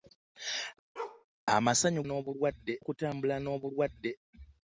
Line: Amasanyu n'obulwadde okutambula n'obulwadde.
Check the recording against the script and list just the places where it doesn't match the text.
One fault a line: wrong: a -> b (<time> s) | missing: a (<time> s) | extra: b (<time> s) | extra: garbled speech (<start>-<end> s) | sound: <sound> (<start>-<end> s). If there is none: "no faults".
sound: bark (1.0-1.3 s)